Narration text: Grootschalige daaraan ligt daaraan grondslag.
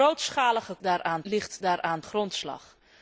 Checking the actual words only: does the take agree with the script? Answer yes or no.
yes